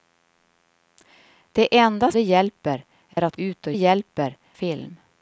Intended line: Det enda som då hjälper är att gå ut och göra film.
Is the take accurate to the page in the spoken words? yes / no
no